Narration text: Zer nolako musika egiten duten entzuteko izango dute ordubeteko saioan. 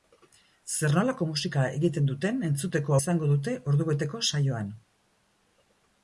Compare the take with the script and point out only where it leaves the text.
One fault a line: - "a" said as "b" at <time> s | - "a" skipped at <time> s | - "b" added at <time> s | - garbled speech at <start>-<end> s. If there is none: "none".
none